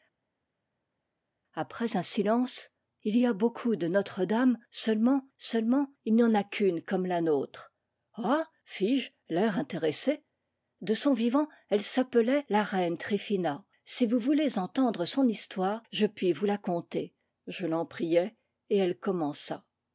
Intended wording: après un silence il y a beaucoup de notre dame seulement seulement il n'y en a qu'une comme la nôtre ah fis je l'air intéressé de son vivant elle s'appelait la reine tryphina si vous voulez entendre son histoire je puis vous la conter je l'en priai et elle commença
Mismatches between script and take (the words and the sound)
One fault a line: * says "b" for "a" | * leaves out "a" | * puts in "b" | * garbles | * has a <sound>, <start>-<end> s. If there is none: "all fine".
all fine